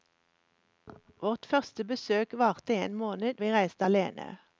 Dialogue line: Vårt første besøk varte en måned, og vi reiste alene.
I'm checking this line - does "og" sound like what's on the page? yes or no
no